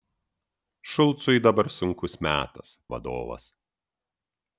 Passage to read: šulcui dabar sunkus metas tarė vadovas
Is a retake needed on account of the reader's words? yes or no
yes